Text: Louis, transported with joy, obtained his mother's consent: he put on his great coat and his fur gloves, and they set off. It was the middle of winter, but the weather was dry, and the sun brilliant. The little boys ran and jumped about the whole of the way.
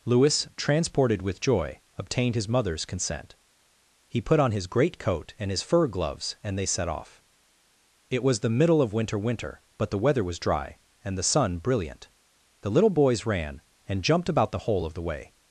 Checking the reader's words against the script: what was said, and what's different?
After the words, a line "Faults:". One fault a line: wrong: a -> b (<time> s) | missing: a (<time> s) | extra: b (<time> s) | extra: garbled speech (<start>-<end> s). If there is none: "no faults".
Louis, transported with joy, obtained his mother's consent: he put on his great coat and his fur gloves, and they set off. It was the middle of winter winter, but the weather was dry, and the sun brilliant. The little boys ran and jumped about the whole of the way.
Faults:
extra: winter (9.2 s)